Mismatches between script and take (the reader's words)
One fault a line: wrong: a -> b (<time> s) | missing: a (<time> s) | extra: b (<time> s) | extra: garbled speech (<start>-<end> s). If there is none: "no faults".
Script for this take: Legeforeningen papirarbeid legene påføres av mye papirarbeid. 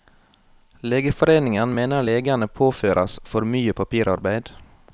wrong: papirarbeid -> mener (1.7 s)
wrong: av -> for (3.3 s)